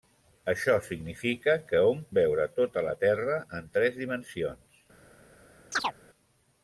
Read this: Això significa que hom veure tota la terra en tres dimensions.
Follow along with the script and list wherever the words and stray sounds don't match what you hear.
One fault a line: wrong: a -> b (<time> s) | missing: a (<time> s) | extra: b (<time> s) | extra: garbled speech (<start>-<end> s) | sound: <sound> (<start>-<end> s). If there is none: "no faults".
sound: chirp (5.7-5.9 s)